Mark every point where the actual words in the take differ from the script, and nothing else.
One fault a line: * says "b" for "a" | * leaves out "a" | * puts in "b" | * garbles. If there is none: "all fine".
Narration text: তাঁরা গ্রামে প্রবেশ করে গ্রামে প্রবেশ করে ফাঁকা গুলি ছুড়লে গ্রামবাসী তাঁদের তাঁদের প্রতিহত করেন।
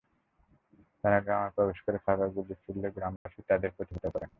* leaves out "গ্রামে প্রবেশ করে"
* leaves out "তাঁদের"